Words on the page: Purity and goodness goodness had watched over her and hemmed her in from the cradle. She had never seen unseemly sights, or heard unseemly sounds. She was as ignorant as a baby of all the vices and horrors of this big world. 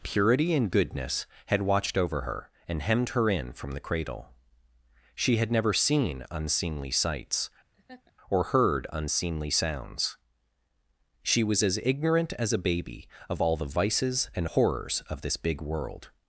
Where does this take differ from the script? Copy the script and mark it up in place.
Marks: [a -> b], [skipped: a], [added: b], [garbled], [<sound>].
Purity and goodness [skipped: goodness] had watched over her and hemmed her in from the cradle. She had never seen unseemly sights, [laugh] or heard unseemly sounds. She was as ignorant as a baby of all the vices and horrors of this big world.